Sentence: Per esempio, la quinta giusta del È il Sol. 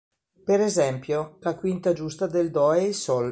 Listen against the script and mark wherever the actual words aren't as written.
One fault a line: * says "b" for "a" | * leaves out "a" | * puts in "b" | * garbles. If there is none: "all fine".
* puts in "Do"